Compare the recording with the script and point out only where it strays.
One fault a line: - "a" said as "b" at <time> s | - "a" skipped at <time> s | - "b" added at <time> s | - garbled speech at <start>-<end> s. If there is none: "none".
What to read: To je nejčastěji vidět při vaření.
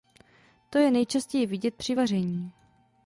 none